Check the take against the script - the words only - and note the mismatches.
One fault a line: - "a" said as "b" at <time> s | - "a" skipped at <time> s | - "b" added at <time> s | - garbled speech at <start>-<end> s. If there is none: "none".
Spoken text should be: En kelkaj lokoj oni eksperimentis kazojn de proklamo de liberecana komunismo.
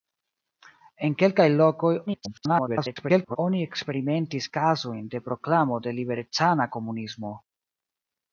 - garbled speech at 2.1-3.4 s